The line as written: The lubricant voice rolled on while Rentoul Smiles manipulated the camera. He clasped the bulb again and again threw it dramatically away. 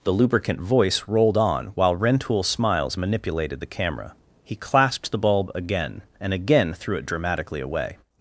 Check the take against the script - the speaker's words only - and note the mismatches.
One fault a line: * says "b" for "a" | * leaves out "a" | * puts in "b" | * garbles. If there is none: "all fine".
all fine